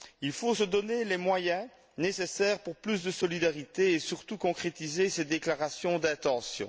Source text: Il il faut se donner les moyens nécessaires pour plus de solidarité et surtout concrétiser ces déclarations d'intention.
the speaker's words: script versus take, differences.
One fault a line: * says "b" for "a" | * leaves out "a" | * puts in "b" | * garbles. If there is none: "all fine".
* leaves out "il"